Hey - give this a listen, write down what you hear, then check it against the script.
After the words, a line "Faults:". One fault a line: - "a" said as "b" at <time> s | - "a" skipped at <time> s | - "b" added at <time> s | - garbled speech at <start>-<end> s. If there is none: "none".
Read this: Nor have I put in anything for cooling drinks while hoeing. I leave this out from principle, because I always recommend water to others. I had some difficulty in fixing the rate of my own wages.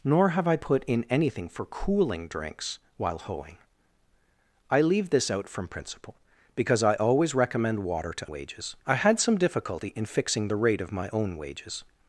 Nor have I put in anything for cooling drinks while hoeing. I leave this out from principle, because I always recommend water to wages. I had some difficulty in fixing the rate of my own wages.
Faults:
- "others" said as "wages" at 8.3 s